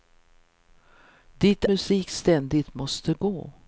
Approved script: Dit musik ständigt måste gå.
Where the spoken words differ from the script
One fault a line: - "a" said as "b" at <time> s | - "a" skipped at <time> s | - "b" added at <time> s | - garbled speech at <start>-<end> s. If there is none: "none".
none